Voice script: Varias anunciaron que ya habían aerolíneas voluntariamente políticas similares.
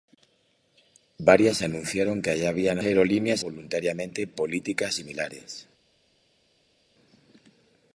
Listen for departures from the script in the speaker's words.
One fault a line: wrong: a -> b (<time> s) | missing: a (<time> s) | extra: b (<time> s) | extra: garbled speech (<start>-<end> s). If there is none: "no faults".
no faults